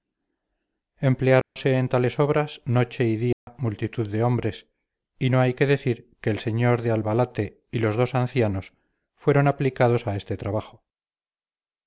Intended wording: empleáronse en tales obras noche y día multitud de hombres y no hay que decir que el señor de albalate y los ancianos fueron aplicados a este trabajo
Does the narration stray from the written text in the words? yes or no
yes